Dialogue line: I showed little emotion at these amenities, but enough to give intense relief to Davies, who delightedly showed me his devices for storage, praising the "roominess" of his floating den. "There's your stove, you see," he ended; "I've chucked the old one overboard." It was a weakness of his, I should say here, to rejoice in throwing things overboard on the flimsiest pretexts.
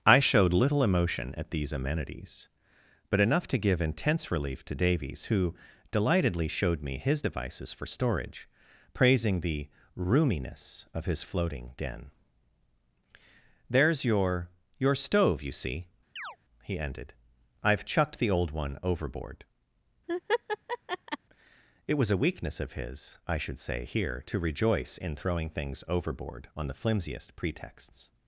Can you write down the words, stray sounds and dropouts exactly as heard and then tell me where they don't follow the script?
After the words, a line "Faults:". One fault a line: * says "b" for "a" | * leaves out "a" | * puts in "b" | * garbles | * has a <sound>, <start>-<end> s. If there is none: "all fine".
I showed little emotion at these amenities, but enough to give intense relief to Davies, who delightedly showed me his devices for storage, praising the "roominess" of his floating den. "There's your your stove, you see," he ended; "I've chucked the old one overboard." It was a weakness of his, I should say here, to rejoice in throwing things overboard on the flimsiest pretexts.
Faults:
* puts in "your"
* has a chirp, 16.2-16.4 s
* has a laugh, 20.1-21.2 s